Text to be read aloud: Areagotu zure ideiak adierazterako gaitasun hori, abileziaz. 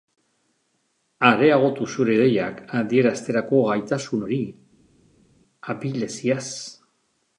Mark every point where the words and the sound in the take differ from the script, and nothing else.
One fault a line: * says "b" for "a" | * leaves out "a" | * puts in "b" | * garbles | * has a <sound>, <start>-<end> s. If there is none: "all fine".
all fine